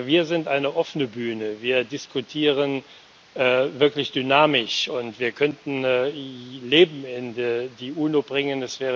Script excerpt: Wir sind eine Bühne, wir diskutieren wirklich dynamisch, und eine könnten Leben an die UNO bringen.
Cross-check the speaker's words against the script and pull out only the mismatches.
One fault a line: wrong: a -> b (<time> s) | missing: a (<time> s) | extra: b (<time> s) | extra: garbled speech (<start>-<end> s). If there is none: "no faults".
extra: offene (0.8 s)
wrong: eine -> wir (5.2 s)
wrong: an -> in (7.0 s)